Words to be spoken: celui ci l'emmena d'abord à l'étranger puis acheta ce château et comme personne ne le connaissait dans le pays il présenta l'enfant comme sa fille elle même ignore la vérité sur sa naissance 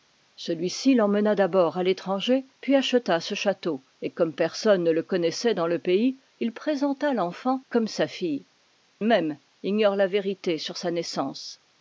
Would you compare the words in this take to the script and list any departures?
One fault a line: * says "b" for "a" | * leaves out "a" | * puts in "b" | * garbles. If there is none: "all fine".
* leaves out "elle"